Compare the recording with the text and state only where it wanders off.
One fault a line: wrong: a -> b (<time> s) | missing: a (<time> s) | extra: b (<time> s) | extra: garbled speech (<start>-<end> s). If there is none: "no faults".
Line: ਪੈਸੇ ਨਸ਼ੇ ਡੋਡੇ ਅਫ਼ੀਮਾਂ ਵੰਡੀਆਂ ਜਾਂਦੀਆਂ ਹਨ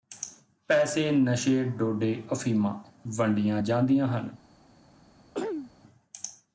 no faults